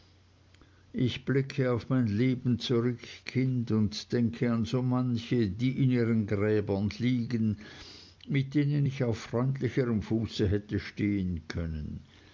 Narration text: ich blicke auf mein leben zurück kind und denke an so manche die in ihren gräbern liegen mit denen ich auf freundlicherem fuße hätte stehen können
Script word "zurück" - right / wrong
right